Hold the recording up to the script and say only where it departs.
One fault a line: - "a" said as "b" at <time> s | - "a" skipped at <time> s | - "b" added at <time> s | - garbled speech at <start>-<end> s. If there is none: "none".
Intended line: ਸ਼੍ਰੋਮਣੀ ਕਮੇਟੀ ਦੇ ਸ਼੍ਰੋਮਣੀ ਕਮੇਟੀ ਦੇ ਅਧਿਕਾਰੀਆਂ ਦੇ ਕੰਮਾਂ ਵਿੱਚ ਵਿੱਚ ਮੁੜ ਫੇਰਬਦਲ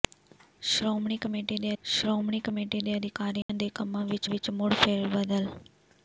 none